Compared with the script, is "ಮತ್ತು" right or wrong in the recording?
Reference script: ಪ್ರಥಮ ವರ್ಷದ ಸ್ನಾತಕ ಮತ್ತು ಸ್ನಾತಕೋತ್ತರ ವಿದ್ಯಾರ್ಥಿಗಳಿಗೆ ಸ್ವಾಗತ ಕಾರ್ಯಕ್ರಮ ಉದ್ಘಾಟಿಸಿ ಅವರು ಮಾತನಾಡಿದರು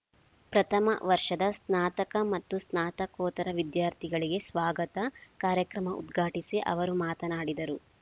right